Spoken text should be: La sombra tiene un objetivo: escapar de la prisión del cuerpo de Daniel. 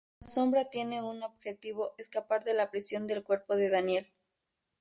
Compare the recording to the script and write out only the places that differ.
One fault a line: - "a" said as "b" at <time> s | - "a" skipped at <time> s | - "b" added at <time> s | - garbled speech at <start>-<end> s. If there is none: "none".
none